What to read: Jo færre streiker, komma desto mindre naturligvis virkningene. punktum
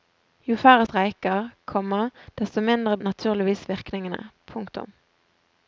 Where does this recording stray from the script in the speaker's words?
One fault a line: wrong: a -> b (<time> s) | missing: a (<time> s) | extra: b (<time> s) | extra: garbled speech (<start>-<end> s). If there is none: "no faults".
no faults